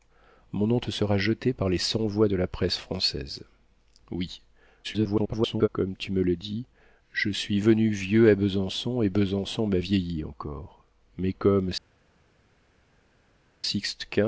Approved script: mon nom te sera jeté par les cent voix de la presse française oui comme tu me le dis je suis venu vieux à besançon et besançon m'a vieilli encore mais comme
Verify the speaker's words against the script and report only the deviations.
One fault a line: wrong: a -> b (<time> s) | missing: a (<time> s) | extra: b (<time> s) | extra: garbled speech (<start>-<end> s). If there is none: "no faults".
extra: garbled speech (4.8-5.7 s)